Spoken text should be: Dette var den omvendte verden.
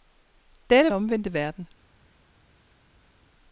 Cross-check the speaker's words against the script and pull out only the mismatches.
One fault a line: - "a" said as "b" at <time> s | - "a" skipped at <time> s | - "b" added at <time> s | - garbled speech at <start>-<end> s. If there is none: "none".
- "var den" skipped at 0.9 s